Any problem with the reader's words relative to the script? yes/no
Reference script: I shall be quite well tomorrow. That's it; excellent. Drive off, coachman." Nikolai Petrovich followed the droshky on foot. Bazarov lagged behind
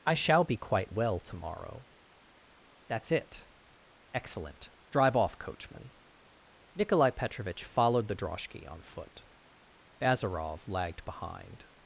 no